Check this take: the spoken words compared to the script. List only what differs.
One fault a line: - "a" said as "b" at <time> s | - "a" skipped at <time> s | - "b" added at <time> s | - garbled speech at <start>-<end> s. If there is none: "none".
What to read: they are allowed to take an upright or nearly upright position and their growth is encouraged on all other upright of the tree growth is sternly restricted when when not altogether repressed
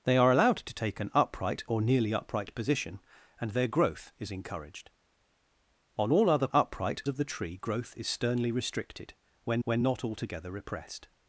none